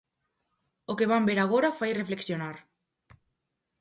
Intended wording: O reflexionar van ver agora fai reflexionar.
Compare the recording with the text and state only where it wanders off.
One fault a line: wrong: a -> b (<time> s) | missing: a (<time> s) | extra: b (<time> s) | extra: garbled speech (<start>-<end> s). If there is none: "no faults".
wrong: reflexionar -> que (1.0 s)